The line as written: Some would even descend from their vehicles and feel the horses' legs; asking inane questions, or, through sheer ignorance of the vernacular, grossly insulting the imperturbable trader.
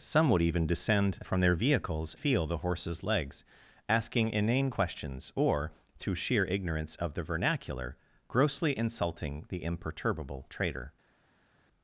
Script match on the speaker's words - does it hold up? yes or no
no